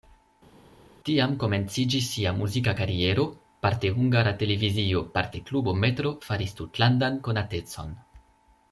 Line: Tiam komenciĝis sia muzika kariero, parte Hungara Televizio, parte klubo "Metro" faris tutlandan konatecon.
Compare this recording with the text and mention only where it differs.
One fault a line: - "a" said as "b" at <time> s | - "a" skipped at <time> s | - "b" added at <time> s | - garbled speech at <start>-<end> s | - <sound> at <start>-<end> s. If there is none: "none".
none